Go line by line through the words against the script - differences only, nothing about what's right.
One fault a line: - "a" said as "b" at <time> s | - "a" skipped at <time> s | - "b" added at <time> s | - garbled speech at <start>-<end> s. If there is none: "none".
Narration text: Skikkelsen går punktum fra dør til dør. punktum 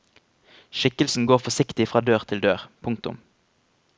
- "punktum" said as "forsiktig" at 1.5 s